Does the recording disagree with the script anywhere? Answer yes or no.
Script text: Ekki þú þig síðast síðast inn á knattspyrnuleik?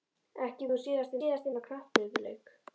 no